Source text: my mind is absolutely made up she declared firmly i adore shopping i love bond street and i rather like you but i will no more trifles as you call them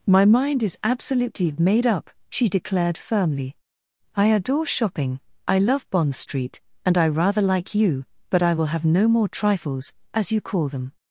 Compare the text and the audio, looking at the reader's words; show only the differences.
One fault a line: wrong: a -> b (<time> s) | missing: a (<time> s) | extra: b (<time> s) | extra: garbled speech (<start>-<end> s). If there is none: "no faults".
extra: have (8.7 s)